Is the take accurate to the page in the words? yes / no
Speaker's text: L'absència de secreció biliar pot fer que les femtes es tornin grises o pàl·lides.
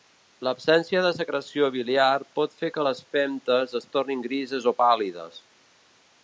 yes